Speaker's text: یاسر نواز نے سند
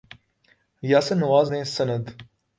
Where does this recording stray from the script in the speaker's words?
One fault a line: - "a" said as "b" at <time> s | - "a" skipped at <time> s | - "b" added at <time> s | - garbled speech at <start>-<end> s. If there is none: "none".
none